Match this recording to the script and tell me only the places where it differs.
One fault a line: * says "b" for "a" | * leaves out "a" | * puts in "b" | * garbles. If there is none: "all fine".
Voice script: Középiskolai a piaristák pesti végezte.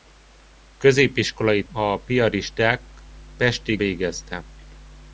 all fine